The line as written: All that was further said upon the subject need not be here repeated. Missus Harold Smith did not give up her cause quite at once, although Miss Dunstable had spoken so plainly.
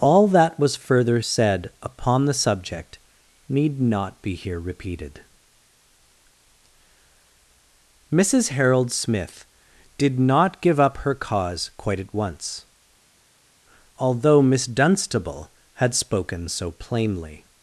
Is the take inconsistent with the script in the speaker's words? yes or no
no